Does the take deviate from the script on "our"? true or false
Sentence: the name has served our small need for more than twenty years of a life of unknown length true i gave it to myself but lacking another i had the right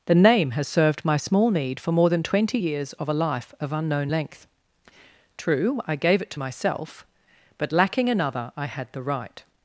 true